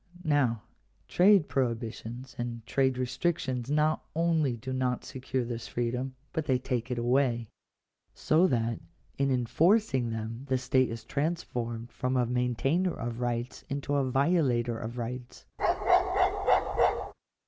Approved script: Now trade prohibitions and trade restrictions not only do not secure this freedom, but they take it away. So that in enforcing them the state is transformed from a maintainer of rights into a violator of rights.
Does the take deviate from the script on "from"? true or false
false